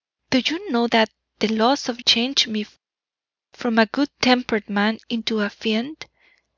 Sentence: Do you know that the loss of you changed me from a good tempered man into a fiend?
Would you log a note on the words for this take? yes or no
yes